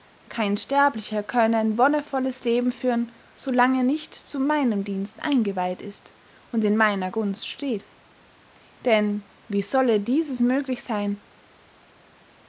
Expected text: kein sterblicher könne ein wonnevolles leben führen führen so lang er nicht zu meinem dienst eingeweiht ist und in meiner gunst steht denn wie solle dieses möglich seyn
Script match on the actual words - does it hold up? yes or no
no